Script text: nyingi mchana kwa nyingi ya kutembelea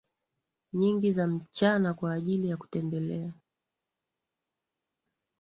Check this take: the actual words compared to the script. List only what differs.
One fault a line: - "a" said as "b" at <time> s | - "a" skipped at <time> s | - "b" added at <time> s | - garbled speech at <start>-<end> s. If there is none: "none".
- "za" added at 1.1 s
- "nyingi" said as "ajili" at 2.1 s